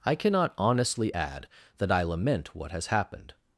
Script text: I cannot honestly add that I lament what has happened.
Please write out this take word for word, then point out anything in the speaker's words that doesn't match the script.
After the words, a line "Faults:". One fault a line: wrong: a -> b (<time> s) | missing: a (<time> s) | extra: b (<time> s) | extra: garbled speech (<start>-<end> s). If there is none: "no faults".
I cannot honestly add that I lament what has happened.
Faults:
no faults